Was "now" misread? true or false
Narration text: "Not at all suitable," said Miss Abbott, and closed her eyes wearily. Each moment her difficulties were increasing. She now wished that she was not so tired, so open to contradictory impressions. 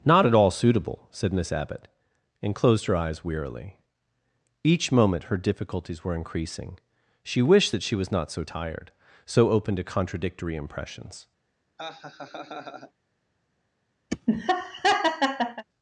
true